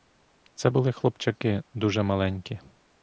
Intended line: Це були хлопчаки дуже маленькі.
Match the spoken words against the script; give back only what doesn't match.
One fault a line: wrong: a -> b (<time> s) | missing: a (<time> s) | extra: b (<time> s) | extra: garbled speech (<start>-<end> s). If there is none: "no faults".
no faults